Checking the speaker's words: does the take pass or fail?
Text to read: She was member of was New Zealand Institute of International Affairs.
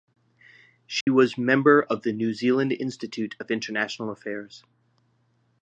fail